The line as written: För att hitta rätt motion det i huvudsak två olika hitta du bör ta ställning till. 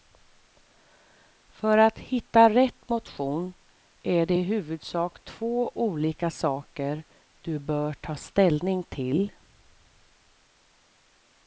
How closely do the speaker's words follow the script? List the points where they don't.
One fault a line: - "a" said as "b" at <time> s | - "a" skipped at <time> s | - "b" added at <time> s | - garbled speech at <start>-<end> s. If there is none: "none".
- "är" added at 4.0 s
- "hitta" said as "saker" at 6.3 s